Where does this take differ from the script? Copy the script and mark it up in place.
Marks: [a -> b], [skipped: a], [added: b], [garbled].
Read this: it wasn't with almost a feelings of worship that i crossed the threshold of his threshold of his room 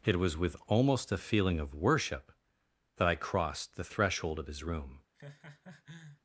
it [wasn't -> was] with almost a [feelings -> feeling] of worship that i crossed the threshold of his [skipped: threshold of his] room